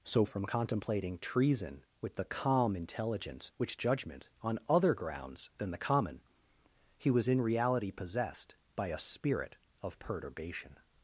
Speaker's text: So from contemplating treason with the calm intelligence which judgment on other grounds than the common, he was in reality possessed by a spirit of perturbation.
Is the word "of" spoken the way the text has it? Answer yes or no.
yes